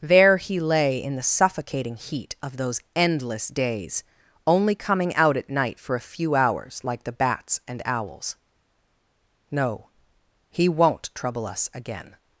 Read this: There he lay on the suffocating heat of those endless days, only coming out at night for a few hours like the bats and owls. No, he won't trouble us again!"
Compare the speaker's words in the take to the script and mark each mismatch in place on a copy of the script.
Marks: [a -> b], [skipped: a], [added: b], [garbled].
There he lay [on -> in] the suffocating heat of those endless days, only coming out at night for a few hours like the bats and owls. No, he won't trouble us again!"